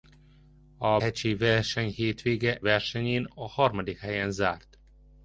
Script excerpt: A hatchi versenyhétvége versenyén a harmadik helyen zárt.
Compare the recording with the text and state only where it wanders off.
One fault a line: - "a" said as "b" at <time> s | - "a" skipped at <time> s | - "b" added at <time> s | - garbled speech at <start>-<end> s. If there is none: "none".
none